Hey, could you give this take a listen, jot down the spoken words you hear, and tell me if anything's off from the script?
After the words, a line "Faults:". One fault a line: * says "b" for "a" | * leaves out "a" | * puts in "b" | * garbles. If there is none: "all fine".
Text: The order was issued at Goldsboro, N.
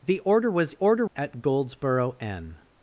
The order was order at Goldsboro, N.
Faults:
* says "order" for "issued"